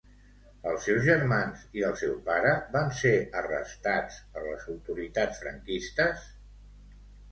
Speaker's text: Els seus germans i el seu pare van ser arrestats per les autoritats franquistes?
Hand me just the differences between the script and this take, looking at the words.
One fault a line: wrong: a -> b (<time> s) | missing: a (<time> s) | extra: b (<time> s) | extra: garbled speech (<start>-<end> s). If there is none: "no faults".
no faults